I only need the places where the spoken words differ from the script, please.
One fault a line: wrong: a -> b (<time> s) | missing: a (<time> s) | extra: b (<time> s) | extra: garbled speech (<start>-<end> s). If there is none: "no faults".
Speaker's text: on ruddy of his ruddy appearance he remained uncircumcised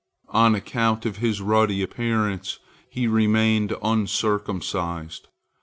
wrong: ruddy -> account (0.6 s)